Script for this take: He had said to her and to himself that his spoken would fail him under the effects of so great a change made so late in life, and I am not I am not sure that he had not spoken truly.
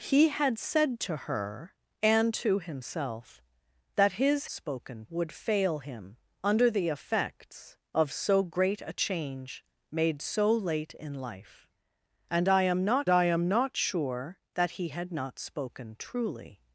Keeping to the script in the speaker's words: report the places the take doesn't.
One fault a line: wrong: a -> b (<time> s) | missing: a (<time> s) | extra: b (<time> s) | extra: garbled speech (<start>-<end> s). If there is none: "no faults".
no faults